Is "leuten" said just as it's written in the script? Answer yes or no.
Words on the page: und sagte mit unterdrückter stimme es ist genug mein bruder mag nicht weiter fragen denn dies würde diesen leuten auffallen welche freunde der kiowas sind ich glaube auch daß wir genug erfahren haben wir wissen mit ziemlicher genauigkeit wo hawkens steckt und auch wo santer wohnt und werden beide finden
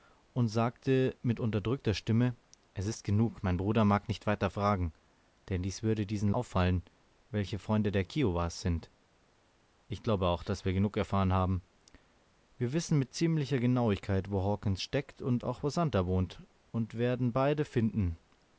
no